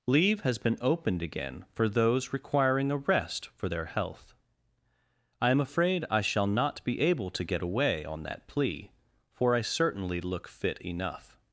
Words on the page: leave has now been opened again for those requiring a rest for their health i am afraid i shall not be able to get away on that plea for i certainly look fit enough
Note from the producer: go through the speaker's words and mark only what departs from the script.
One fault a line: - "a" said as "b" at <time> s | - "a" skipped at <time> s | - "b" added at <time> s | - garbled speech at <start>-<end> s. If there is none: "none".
- "now" skipped at 0.6 s